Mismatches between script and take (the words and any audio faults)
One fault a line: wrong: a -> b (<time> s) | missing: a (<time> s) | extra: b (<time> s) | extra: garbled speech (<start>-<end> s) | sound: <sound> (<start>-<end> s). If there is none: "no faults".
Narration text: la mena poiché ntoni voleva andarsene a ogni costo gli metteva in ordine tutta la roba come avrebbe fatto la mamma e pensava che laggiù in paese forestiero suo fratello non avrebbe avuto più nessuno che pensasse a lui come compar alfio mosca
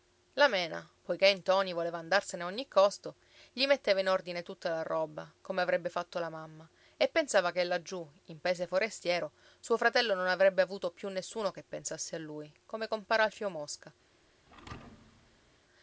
sound: thud (14.5-15.6 s)